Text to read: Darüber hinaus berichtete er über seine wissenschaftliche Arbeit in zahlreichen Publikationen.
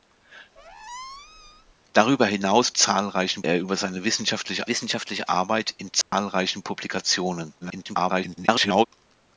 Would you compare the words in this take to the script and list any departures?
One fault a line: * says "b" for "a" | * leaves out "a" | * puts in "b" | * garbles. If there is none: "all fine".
* says "zahlreichen" for "berichtete"
* puts in "wissenschaftliche"
* garbles